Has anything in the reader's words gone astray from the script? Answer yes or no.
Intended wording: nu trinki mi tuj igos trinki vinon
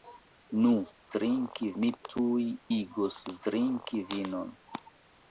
no